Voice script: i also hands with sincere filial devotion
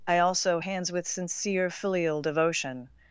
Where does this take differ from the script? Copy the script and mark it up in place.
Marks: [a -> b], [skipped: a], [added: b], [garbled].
i also hands with sincere filial devotion